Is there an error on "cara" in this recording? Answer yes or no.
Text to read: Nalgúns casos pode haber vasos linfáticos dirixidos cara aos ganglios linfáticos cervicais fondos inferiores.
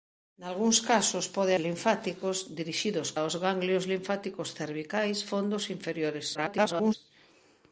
yes